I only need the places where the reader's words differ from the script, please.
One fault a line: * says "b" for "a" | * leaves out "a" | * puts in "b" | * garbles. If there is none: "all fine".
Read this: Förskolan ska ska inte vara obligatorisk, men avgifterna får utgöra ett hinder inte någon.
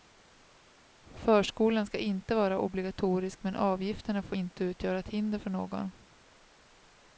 * leaves out "ska"
* puts in "inte"
* says "för" for "inte"